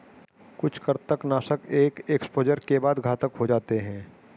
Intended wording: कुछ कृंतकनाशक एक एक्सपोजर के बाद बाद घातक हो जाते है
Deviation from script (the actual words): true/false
true